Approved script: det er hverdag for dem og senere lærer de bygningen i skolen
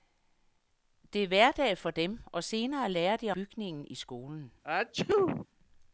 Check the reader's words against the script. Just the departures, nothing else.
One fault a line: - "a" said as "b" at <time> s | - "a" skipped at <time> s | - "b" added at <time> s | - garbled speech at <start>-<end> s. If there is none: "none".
none